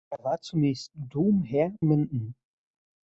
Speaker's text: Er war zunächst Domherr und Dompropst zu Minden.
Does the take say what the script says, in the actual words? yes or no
no